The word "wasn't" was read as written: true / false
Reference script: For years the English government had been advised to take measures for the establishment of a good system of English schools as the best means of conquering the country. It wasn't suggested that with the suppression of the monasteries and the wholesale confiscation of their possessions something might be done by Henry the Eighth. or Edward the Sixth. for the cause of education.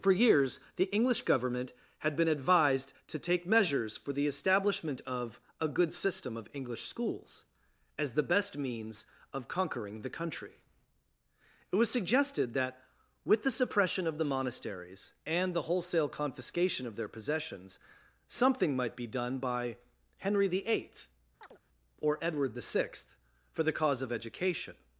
false